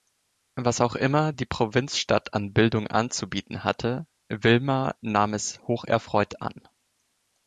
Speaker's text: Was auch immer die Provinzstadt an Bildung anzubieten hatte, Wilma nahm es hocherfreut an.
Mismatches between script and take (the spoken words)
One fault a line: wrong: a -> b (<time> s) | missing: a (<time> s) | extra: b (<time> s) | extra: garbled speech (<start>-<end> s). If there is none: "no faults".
no faults